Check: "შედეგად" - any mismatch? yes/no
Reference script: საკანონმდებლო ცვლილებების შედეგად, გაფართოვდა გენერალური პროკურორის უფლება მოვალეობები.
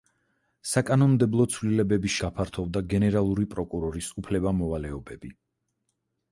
yes